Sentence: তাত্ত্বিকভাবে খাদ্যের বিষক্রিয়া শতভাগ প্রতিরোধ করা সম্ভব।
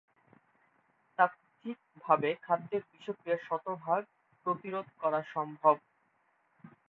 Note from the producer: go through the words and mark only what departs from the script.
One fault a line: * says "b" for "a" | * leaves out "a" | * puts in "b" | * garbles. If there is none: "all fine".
all fine